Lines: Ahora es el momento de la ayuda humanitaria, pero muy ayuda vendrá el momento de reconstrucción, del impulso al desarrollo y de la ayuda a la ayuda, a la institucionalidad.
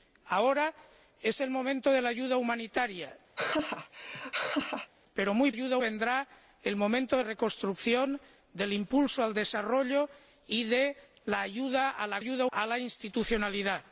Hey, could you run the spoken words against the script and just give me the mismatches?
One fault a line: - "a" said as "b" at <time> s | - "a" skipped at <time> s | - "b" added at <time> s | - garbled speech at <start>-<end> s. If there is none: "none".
none